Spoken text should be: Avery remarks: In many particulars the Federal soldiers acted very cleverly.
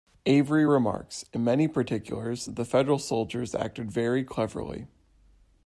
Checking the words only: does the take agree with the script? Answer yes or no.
yes